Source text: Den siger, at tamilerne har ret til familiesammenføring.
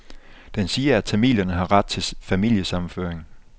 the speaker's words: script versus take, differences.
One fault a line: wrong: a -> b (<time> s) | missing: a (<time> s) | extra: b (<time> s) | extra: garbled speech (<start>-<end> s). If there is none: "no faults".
no faults